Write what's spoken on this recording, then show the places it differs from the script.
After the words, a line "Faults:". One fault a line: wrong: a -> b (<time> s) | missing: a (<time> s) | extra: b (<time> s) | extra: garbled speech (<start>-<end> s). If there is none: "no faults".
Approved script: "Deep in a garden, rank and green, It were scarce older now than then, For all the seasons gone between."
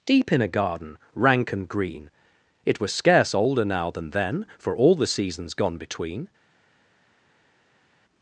"Deep in a garden, rank and green, It was scarce older now than then, For all the seasons gone between."
Faults:
wrong: were -> was (2.8 s)